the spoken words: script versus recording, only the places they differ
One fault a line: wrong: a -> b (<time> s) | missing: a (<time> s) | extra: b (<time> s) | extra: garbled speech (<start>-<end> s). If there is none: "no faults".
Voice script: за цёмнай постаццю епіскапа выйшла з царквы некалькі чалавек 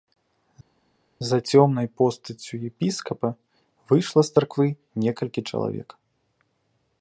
no faults